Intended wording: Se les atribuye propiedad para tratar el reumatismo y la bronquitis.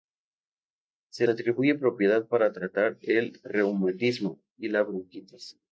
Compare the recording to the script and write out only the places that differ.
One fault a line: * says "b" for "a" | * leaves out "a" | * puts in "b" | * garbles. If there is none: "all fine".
* leaves out "les"